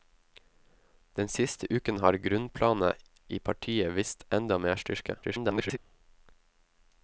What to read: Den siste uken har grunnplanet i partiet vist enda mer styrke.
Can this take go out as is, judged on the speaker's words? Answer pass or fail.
fail